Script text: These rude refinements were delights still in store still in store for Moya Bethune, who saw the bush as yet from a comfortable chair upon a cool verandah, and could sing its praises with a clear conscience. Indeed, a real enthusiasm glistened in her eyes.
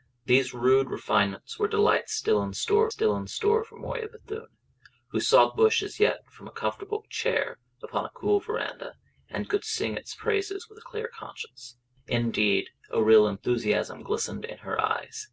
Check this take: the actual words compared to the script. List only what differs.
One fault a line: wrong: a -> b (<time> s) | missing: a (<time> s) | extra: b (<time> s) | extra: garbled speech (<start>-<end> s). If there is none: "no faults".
no faults